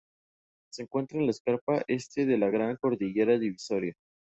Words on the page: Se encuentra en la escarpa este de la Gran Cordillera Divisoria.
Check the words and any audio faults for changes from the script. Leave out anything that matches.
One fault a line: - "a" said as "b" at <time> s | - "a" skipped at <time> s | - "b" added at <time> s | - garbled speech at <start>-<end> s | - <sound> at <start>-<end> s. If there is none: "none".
none